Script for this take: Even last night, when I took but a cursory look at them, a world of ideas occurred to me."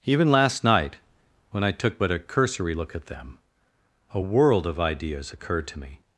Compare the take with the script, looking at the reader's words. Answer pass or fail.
pass